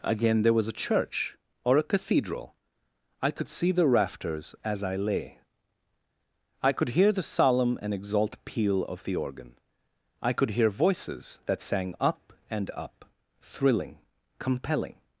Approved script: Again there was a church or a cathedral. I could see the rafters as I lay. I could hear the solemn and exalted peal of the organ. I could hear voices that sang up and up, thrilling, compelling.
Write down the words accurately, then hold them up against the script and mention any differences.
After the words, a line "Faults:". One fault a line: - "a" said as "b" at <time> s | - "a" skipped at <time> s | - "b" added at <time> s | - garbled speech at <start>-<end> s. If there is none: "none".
Again there was a church or a cathedral. I could see the rafters as I lay. I could hear the solemn and exalt peal of the organ. I could hear voices that sang up and up, thrilling, compelling.
Faults:
- "exalted" said as "exalt" at 7.9 s